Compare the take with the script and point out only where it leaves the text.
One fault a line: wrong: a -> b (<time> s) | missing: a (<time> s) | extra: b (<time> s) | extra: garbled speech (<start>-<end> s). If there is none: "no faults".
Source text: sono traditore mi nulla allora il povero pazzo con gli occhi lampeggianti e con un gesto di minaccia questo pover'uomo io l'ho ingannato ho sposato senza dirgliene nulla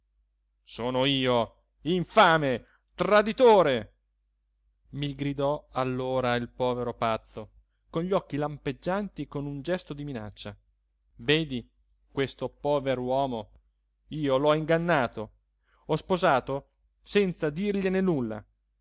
extra: io infame (1.1 s)
wrong: nulla -> gridò (5.1 s)
extra: vedi (11.2 s)